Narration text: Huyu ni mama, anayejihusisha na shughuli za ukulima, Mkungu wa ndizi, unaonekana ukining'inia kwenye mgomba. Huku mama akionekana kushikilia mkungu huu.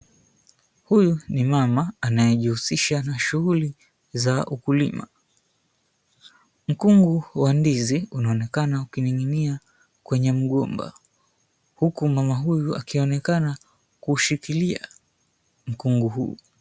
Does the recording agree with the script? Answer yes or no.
no